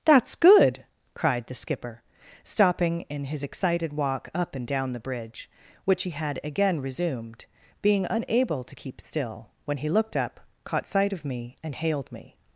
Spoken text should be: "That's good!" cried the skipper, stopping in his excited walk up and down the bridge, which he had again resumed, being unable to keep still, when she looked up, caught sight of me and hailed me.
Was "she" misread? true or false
true